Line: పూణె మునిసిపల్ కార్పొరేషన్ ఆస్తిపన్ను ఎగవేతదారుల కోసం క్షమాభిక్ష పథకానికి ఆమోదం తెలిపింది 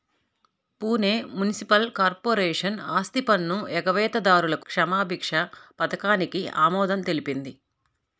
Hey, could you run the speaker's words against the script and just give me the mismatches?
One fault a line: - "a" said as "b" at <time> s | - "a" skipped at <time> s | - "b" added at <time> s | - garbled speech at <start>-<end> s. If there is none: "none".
- "కోసం" skipped at 4.6 s